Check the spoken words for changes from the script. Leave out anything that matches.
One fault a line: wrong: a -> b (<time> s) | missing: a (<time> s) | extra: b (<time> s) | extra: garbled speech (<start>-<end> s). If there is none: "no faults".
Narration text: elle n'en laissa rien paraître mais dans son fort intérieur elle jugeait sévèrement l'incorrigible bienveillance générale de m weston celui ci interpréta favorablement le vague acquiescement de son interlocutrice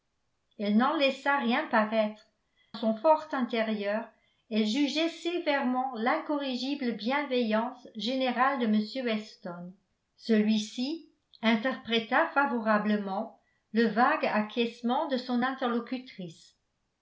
missing: mais dans (2.2 s)